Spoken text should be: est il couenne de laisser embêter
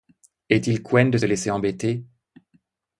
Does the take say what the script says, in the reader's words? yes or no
yes